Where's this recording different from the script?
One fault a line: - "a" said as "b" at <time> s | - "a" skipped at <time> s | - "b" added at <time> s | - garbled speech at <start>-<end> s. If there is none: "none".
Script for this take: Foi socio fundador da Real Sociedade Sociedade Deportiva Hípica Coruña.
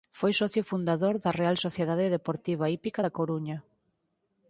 - "Sociedade" skipped at 2.1 s
- "da" added at 3.0 s